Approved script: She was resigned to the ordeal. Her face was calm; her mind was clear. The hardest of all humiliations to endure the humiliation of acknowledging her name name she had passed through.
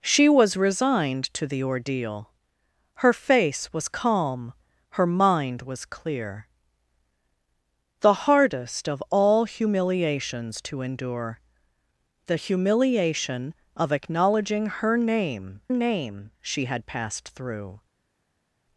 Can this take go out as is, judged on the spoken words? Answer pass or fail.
pass